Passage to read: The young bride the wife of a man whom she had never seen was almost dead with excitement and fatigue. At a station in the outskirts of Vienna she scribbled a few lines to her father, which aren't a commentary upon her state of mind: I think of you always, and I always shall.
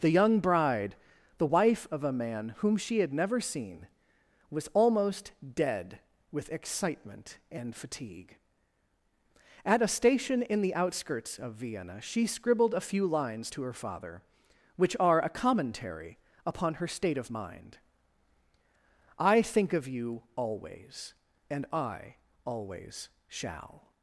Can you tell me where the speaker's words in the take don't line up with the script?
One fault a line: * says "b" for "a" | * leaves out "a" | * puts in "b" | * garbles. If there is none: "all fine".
* says "are" for "aren't"